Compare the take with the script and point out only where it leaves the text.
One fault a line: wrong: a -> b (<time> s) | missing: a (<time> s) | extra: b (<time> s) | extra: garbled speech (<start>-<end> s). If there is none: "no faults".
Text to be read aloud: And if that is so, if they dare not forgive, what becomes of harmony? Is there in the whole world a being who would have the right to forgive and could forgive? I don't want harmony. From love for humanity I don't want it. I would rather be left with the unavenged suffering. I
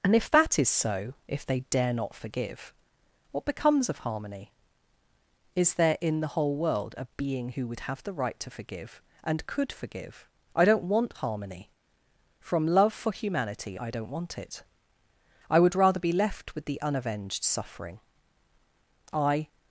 no faults